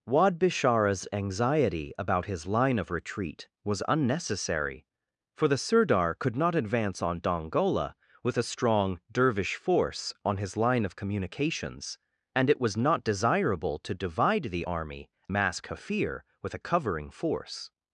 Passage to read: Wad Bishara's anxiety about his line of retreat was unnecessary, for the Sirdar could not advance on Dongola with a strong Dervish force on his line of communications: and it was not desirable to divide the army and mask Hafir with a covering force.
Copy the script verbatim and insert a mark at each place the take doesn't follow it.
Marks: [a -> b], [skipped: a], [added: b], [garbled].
Wad Bishara's anxiety about his line of retreat was unnecessary, for the Sirdar could not advance on Dongola with a strong Dervish force on his line of communications: and it was not desirable to divide the army [skipped: and] mask Hafir with a covering force.